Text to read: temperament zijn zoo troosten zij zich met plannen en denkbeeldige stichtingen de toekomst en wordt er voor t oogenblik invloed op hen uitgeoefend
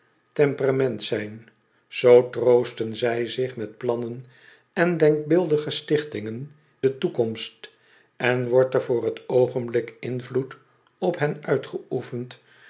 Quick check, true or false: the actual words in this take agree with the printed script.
true